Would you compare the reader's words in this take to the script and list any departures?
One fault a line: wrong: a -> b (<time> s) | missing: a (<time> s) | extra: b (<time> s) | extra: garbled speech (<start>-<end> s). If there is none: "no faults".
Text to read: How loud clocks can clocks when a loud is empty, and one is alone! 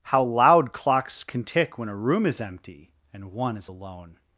wrong: clocks -> tick (1.4 s)
wrong: loud -> room (1.9 s)